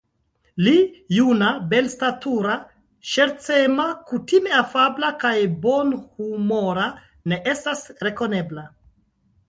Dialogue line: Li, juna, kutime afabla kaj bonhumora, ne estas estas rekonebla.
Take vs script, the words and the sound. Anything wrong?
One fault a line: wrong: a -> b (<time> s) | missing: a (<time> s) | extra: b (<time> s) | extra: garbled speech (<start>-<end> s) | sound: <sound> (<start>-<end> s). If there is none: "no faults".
extra: belstatura ŝercema (1.7 s)
missing: estas (7.9 s)